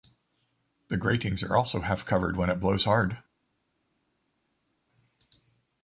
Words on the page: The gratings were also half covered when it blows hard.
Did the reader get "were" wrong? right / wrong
wrong